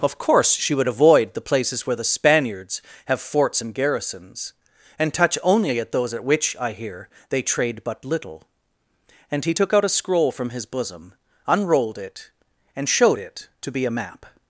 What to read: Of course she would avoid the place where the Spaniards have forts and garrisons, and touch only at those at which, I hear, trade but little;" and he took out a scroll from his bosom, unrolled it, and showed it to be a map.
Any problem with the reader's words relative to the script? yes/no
yes